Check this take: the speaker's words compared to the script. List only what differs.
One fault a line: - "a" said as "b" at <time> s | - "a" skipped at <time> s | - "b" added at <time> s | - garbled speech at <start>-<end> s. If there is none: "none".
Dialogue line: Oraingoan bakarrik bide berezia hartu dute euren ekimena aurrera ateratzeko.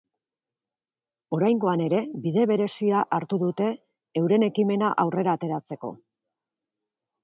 - "bakarrik" said as "ere" at 1.9 s